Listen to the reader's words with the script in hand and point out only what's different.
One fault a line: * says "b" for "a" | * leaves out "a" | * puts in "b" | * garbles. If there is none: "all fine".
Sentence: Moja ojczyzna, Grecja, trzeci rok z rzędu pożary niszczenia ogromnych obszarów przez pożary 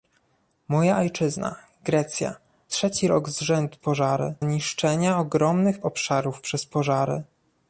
all fine